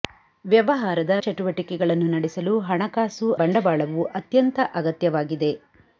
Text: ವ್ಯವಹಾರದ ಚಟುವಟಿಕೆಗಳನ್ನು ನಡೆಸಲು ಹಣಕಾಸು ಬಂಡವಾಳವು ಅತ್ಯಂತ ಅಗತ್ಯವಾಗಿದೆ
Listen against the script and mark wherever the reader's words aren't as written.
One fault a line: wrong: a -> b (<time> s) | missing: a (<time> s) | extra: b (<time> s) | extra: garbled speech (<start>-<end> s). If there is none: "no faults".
no faults